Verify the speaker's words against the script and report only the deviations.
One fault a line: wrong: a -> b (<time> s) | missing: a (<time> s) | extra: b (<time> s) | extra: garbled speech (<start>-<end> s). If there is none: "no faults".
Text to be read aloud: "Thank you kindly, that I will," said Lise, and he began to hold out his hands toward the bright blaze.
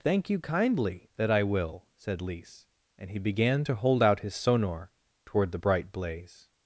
wrong: hands -> sonor (4.3 s)